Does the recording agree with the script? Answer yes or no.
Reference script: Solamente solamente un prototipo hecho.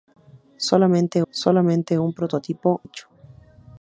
yes